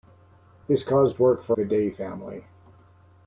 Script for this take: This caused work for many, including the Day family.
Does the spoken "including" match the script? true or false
false